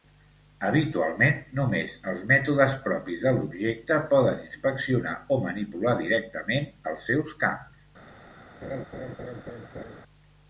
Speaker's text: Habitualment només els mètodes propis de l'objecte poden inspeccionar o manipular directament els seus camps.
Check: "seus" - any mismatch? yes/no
no